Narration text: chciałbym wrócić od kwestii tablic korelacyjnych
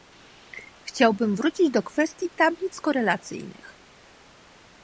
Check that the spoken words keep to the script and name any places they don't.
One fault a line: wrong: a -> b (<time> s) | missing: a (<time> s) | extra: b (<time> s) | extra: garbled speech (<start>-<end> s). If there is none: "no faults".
wrong: od -> do (1.7 s)